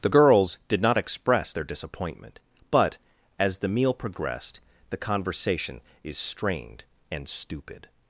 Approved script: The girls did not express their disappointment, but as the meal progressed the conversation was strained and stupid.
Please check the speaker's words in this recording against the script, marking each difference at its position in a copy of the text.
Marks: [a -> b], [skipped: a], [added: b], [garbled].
The girls did not express their disappointment, but as the meal progressed the conversation [was -> is] strained and stupid.